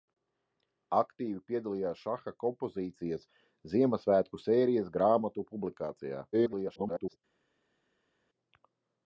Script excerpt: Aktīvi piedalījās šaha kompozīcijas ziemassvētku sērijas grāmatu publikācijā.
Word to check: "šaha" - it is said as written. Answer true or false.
true